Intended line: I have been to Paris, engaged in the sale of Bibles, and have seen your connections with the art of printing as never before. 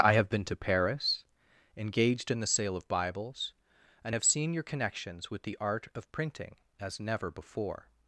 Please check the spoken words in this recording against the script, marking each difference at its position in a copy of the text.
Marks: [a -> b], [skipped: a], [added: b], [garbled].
I have been to Paris, engaged in the sale of Bibles, and have seen your connections with the art of printing as never before.